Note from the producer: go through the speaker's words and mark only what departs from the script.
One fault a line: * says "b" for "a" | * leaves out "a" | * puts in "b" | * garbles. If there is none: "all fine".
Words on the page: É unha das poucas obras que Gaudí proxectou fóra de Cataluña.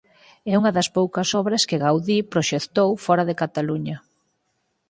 all fine